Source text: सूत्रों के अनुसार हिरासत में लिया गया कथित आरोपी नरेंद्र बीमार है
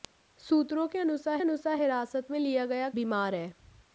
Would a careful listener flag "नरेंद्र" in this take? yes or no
yes